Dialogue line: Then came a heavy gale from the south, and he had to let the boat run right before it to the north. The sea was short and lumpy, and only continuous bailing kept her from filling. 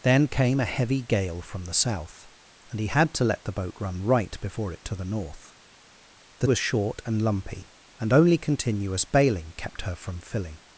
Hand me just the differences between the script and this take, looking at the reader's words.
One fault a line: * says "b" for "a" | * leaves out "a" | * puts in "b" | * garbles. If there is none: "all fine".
* leaves out "sea"